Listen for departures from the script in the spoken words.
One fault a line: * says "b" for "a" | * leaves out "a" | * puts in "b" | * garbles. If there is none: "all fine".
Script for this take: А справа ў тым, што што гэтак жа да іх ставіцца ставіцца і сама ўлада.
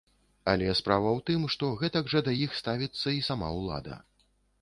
* says "Але" for "А"
* leaves out "што"
* leaves out "ставіцца"